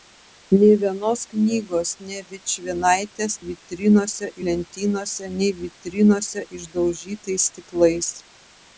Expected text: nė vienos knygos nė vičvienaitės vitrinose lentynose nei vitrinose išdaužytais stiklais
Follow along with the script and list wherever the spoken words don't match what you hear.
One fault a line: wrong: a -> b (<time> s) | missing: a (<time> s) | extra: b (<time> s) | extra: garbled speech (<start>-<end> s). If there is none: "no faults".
no faults